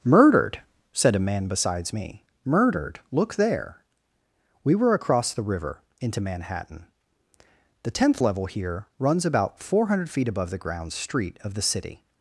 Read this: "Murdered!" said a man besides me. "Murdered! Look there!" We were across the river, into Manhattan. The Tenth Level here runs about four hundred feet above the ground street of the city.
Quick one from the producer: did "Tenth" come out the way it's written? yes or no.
yes